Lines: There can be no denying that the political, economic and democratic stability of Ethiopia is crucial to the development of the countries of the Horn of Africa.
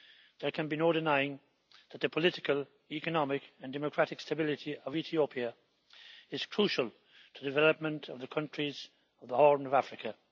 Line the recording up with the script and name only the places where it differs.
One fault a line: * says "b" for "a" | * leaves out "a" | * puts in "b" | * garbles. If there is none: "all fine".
all fine